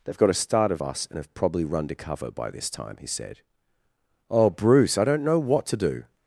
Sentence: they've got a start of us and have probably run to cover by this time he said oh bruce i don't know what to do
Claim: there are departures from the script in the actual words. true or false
false